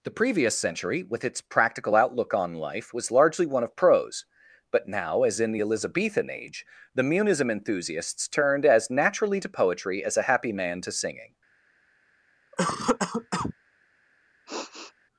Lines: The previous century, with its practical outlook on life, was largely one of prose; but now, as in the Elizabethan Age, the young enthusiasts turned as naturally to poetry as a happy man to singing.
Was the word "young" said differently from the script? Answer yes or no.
yes